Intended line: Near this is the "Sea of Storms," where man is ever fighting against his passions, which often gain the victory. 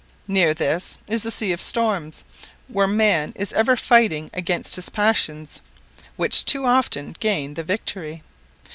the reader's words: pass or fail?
fail